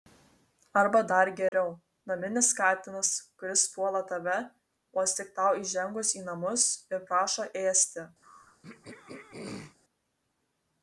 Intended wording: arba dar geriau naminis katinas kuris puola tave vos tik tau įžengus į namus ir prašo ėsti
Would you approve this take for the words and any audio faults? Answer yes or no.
no